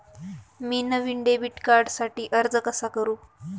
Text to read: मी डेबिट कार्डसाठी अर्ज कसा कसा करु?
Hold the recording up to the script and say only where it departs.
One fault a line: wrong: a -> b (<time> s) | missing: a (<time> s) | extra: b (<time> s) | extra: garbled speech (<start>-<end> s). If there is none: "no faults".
extra: नवीन (0.8 s)
missing: कसा (2.9 s)